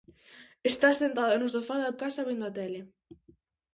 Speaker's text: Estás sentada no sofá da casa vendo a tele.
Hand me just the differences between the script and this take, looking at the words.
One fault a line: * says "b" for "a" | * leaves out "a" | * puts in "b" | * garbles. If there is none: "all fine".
all fine